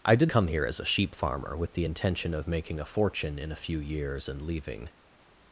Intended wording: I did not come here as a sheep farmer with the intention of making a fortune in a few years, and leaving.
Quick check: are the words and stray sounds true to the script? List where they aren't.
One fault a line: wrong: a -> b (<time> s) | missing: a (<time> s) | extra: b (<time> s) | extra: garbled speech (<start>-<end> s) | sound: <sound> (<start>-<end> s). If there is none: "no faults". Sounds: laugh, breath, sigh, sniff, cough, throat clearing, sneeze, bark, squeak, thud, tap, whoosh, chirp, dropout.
missing: not (0.3 s)